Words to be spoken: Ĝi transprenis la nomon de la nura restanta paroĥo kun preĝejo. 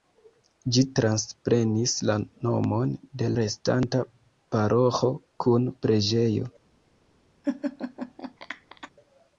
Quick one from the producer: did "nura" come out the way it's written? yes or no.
no